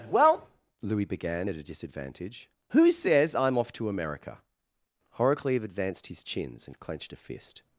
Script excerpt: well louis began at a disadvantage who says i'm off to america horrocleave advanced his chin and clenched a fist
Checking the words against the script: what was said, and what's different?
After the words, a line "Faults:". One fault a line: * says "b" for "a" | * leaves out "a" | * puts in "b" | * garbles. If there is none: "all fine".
well louis began at a disadvantage who says i'm off to america horrocleave advanced his chins and clenched a fist
Faults:
* says "chins" for "chin"